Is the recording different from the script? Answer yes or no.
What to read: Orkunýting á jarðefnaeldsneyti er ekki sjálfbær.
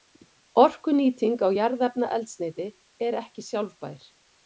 no